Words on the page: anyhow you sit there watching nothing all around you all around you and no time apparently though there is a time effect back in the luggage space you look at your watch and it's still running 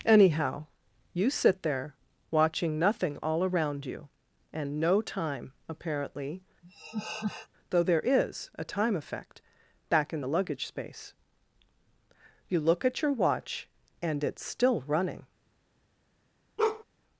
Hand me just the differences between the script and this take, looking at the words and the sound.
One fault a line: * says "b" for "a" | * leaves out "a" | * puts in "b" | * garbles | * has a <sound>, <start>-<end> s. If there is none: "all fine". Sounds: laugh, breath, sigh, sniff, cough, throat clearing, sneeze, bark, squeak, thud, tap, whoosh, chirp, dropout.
* leaves out "all around you"
* has a laugh, 6.6-7.5 s
* has a bark, 16.6-16.8 s